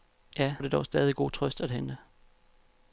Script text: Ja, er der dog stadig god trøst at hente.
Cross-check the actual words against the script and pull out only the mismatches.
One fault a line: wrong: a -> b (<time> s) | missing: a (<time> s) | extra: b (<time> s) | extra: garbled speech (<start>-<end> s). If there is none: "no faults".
no faults